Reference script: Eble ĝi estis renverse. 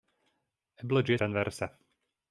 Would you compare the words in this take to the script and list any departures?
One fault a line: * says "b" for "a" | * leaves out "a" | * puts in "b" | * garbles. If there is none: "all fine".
* leaves out "estis"